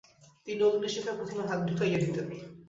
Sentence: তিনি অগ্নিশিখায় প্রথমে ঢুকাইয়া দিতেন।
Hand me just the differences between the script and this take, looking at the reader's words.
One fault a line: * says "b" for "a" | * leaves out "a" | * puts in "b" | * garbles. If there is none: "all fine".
* puts in "হাত"